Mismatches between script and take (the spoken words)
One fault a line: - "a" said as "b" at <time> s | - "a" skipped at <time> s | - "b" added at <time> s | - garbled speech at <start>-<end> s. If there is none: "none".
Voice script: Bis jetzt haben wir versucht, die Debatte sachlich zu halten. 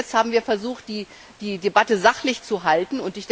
none